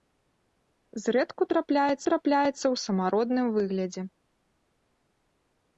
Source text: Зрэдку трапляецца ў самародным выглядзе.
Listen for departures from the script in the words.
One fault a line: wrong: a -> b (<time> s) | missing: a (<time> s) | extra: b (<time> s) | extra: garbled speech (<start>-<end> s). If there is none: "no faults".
extra: трапляецца (2.1 s)